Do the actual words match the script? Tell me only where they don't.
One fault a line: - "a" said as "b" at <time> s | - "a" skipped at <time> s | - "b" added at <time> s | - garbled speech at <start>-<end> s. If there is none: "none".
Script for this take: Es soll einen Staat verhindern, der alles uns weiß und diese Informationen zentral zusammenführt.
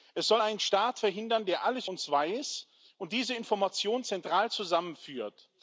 none